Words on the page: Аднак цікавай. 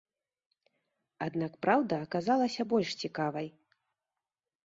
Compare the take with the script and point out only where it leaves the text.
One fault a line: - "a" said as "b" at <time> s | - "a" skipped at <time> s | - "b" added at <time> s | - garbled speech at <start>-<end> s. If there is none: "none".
- "праўда аказалася больш" added at 1.6 s